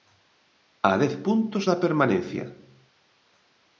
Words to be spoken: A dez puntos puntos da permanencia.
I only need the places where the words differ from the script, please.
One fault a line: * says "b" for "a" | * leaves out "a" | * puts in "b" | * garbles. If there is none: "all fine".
* leaves out "puntos"